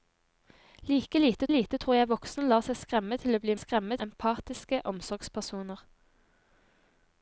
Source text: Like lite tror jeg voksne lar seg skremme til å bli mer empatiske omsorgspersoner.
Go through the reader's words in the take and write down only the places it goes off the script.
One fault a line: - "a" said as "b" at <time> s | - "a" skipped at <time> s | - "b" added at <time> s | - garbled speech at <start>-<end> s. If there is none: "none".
- "lite" added at 1.5 s
- "mer" said as "skremme" at 3.6 s